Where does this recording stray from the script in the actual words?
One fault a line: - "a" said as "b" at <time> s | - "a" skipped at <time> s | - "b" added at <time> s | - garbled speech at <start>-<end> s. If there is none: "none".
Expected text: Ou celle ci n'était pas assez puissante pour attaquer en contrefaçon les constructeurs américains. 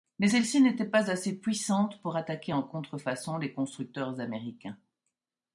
- "Ou" said as "Mais" at 0.2 s